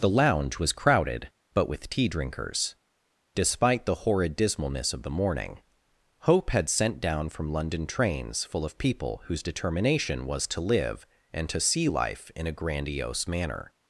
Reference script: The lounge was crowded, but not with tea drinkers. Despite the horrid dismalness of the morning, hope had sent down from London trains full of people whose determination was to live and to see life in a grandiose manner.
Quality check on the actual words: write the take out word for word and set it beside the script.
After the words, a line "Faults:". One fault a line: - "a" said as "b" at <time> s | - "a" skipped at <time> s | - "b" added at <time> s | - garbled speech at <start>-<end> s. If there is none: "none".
The lounge was crowded, but with tea drinkers. Despite the horrid dismalness of the morning, hope had sent down from London trains full of people whose determination was to live and to see life in a grandiose manner.
Faults:
- "not" skipped at 1.7 s